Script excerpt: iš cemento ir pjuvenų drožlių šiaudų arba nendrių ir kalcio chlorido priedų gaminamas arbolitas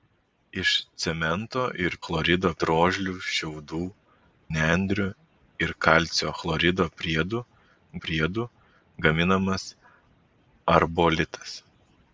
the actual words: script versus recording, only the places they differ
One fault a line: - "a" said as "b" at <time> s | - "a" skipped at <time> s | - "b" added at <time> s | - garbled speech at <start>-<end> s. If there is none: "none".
- "pjuvenų" said as "chlorido" at 2.0 s
- "arba" skipped at 3.8 s
- "priedų" added at 8.1 s